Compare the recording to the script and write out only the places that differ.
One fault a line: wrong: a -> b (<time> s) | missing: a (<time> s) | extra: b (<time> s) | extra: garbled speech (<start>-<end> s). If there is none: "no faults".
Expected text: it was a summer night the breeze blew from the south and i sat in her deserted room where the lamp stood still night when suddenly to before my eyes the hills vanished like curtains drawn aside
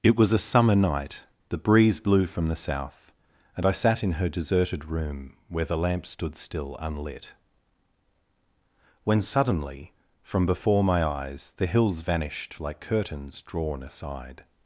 wrong: night -> unlit (6.8 s)
wrong: to -> from (10.2 s)